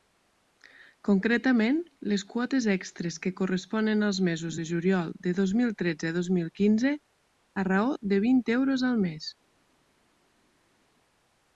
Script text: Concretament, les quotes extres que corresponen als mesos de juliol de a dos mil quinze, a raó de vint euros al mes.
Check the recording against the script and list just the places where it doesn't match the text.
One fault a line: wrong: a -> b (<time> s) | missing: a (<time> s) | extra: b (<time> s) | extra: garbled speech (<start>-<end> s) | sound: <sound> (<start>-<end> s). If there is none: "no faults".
extra: dos mil tretze (5.4 s)